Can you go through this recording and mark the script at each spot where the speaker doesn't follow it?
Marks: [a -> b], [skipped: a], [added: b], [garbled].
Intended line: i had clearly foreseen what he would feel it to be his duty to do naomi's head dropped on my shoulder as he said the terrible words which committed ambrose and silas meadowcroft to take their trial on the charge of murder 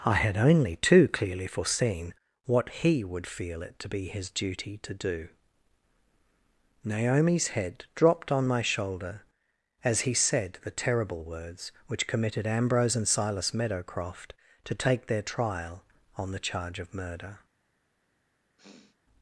i had [added: only too] clearly foreseen what he would feel it to be his duty to do naomi's head dropped on my shoulder as he said the terrible words which committed ambrose and silas meadowcroft to take their trial on the charge of murder